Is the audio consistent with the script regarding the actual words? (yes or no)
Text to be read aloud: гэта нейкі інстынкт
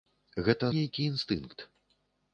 yes